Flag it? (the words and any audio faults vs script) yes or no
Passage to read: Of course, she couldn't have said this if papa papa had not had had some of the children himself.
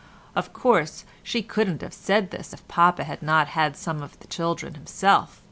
yes